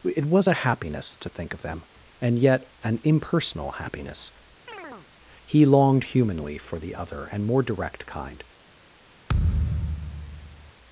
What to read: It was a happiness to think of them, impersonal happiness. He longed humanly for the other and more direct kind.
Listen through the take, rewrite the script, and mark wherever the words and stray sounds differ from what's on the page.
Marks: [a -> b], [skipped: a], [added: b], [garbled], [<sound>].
It was a happiness to think of them, [added: and yet an] impersonal happiness. [chirp] He longed humanly for the other and more direct kind. [thud]